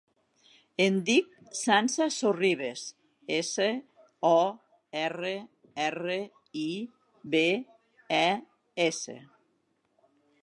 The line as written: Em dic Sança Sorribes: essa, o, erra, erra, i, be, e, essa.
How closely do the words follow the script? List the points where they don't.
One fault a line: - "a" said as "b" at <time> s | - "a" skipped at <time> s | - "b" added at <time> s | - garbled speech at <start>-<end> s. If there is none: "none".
none